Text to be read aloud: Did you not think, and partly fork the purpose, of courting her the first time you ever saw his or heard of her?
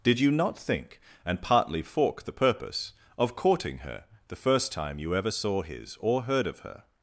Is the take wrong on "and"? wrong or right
right